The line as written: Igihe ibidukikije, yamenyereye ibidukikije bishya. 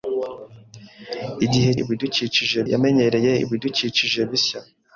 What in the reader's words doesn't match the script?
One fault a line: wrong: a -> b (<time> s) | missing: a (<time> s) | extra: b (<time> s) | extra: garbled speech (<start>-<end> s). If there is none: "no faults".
no faults